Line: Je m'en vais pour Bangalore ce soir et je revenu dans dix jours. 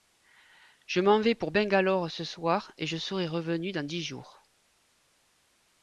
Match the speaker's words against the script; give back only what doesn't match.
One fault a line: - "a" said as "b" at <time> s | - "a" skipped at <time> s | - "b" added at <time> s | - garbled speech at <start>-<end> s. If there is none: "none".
- "serai" added at 2.9 s